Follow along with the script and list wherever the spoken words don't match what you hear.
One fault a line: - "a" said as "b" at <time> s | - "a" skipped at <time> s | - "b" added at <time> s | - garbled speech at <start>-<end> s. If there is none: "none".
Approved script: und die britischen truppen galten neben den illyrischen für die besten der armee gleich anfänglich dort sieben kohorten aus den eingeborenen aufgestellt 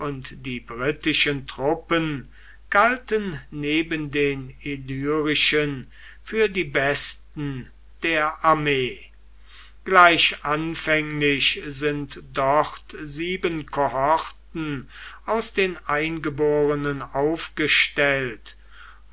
- "sind" added at 11.7 s